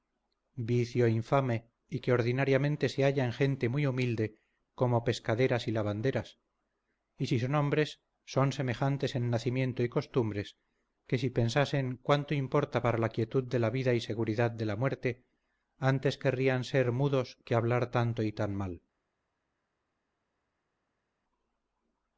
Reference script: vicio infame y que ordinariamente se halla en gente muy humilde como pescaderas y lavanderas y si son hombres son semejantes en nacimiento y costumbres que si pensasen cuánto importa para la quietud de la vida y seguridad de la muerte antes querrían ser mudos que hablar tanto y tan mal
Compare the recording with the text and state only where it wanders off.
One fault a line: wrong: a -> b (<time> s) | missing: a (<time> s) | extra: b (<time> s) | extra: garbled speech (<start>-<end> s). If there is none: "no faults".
no faults